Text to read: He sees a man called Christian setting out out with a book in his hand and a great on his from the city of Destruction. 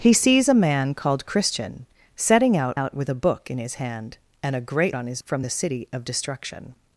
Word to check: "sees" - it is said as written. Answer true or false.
true